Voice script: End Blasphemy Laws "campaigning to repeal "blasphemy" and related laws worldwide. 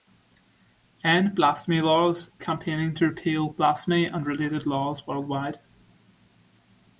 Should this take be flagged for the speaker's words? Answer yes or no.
no